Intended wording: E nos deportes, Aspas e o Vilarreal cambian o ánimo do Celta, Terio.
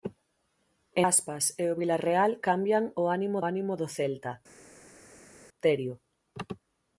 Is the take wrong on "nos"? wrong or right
wrong